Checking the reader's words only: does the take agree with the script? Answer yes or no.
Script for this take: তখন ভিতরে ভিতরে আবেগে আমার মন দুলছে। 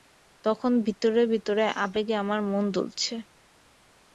yes